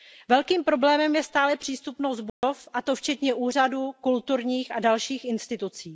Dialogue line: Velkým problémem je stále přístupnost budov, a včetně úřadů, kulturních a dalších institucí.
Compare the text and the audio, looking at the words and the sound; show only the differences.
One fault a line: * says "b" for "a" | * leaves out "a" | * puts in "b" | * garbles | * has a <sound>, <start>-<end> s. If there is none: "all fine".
* has a dropout, 2.3-2.4 s
* puts in "to"